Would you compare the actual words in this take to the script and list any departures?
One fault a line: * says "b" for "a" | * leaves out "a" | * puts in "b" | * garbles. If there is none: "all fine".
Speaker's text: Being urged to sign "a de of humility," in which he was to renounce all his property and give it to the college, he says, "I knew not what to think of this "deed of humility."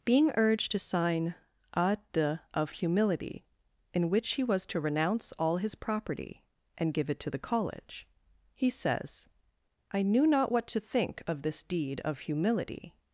all fine